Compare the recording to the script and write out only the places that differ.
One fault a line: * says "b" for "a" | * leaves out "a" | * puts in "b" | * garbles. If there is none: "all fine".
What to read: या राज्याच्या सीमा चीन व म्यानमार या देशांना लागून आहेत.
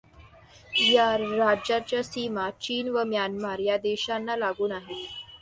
all fine